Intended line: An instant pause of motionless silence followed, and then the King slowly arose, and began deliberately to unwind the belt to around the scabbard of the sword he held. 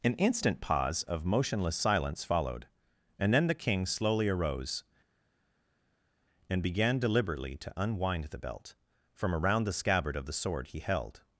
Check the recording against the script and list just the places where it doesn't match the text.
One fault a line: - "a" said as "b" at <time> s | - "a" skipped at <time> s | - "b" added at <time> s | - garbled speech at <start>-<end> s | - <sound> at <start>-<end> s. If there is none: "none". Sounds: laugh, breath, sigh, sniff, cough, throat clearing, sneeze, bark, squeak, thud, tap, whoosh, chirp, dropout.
- "to" said as "from" at 9.1 s